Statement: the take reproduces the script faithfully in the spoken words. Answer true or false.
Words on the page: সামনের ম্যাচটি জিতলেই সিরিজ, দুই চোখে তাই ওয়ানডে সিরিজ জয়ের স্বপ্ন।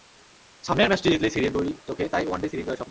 true